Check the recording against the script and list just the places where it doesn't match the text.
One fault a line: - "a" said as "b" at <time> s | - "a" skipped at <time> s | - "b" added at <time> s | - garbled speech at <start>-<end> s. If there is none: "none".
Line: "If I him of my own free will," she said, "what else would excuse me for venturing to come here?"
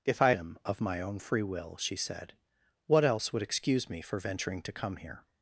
none